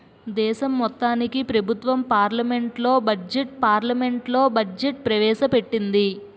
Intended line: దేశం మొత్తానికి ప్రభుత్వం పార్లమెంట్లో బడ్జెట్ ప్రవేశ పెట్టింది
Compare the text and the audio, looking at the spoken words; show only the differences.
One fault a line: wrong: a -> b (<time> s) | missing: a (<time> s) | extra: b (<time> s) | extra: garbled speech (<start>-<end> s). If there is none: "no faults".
extra: పార్లమెంట్లో బడ్జెట్ (3.6 s)